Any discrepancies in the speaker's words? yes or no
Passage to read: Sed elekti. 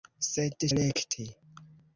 no